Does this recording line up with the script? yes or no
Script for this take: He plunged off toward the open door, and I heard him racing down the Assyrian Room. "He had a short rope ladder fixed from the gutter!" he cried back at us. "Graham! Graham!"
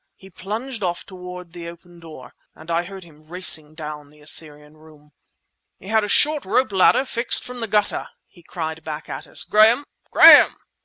yes